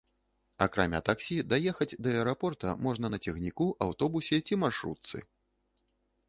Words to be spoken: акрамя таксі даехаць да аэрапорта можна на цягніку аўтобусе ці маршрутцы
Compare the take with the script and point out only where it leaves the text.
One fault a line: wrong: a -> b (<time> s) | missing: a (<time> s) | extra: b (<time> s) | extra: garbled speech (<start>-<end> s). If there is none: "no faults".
no faults